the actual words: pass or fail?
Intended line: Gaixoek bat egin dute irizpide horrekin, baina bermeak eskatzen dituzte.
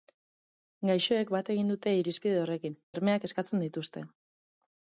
fail